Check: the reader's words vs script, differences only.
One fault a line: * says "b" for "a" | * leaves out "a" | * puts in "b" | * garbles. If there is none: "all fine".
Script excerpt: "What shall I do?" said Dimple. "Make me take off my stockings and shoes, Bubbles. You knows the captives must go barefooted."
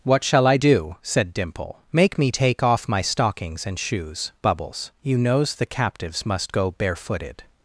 all fine